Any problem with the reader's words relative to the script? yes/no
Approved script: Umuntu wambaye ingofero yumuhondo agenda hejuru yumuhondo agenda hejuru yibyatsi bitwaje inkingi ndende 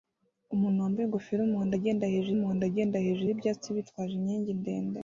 no